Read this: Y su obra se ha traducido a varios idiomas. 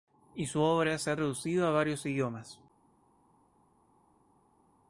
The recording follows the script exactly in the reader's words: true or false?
true